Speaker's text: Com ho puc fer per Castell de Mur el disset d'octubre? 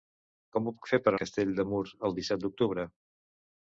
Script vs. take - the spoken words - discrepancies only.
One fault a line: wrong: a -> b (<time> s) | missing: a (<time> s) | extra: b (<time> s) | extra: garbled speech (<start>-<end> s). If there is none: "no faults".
no faults